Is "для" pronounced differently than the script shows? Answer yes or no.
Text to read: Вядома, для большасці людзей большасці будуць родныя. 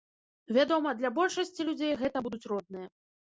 no